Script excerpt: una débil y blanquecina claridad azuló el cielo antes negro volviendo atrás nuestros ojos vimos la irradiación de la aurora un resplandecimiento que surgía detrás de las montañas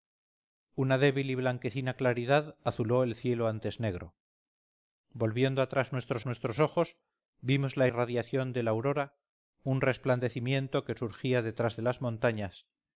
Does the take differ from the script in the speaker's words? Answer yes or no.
yes